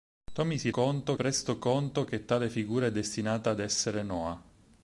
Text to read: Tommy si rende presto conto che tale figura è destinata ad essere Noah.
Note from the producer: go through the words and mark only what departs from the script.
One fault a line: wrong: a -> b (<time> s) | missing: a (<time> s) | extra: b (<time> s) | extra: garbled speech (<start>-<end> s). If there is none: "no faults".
wrong: rende -> conto (0.7 s)